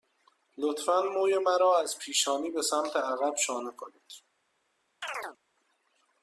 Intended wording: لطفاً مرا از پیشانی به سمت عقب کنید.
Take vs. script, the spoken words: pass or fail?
fail